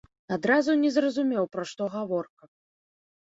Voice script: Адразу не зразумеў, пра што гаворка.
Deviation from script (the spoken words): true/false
false